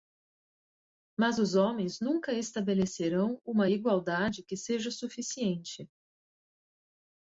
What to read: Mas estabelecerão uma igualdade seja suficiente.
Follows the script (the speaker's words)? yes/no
no